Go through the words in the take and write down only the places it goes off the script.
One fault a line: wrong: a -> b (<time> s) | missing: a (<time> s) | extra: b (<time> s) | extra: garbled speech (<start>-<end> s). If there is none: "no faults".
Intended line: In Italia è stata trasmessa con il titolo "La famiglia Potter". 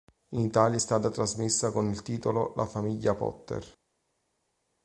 no faults